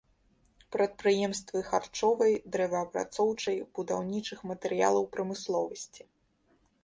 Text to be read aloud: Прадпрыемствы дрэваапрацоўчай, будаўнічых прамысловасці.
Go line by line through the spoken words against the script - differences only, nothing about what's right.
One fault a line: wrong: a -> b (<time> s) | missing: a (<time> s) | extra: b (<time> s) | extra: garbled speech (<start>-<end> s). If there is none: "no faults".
extra: харчовай (1.7 s)
extra: матэрыялаў (4.5 s)